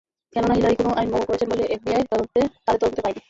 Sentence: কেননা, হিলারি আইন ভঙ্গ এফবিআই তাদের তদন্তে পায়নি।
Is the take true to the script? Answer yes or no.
no